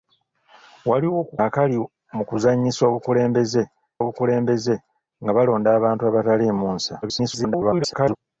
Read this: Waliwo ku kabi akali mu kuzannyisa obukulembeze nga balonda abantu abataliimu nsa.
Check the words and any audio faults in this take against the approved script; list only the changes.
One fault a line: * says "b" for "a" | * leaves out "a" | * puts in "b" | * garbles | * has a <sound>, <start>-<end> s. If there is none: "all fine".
* leaves out "kabi"
* puts in "obukulembeze"
* garbles